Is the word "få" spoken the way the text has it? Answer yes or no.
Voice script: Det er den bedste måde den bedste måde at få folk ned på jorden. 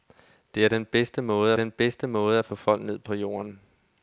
yes